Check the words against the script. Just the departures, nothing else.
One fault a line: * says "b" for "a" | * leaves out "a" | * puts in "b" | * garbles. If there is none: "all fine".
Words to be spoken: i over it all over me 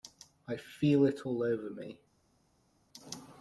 * says "feel" for "over"